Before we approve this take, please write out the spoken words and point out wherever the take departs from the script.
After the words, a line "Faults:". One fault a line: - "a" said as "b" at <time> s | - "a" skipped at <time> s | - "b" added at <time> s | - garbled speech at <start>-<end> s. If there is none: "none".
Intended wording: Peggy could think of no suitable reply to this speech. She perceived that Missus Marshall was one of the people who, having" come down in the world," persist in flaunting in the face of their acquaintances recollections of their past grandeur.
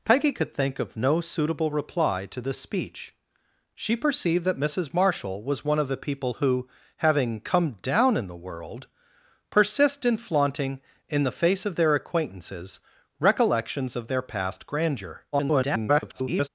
Peggy could think of no suitable reply to this speech. She perceived that Missus Marshall was one of the people who, having" come down in the world," persist in flaunting in the face of their acquaintances recollections of their past grandeur. [garbled]
Faults:
- garbled speech at 15.3-16.5 s